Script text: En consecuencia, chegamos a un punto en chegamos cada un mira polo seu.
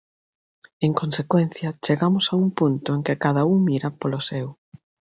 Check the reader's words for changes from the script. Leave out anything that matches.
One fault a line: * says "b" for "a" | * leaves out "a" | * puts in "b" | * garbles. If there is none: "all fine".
* says "que" for "chegamos"